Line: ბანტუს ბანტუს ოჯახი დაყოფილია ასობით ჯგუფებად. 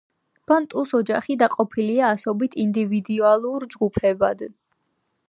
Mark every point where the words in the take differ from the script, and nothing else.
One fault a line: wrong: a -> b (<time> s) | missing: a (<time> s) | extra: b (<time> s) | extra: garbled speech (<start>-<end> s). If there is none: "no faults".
missing: ბანტუს (0.9 s)
extra: ინდივიდუალურ (2.6 s)